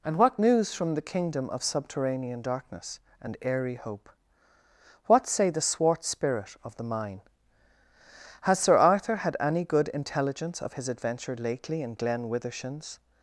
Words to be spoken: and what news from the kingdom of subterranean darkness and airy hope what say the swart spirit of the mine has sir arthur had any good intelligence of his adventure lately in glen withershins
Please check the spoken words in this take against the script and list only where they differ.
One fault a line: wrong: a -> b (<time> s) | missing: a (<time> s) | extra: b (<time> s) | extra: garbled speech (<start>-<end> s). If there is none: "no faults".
no faults